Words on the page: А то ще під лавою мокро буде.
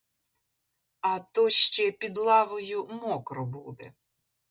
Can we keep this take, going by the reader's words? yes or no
yes